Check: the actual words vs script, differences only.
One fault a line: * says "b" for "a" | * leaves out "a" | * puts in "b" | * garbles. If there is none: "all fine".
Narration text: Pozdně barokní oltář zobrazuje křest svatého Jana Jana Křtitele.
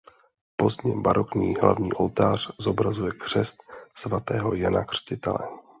* puts in "hlavní"
* leaves out "Jana"